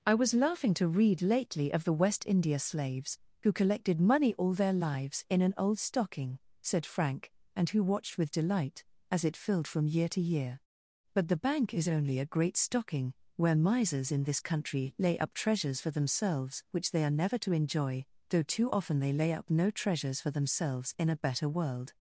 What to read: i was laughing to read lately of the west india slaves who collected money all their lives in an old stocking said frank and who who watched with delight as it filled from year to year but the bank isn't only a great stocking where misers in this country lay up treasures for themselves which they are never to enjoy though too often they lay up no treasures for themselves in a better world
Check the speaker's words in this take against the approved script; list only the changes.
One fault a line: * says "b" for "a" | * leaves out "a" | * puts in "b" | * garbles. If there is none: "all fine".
* leaves out "who"
* says "is" for "isn't"